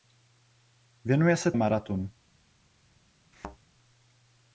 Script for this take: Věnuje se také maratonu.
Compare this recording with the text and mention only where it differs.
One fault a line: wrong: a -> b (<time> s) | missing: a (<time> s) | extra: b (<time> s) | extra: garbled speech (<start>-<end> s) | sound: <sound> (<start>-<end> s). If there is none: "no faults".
missing: také (1.5 s)
sound: thud (3.3-3.6 s)